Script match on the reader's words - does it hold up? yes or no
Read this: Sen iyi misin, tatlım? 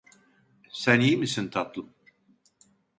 yes